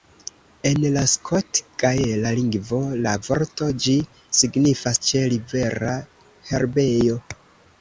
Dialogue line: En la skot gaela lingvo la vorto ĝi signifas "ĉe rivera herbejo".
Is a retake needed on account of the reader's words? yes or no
no